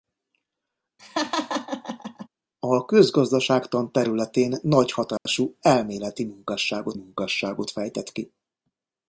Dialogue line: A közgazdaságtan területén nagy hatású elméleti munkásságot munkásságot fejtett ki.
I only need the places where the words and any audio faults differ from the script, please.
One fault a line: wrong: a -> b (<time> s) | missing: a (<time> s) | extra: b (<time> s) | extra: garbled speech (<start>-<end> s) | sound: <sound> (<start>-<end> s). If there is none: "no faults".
sound: laugh (1.0-2.3 s)
sound: dropout (5.2-5.3 s)